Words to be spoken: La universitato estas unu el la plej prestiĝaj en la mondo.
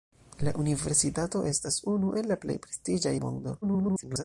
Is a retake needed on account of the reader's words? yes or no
yes